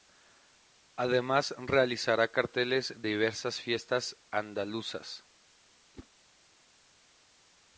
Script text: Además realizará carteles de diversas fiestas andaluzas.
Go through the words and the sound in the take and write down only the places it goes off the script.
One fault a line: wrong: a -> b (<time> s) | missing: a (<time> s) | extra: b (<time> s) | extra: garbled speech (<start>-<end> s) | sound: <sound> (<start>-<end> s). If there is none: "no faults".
missing: de (3.0 s)
sound: whoosh (5.9-6.1 s)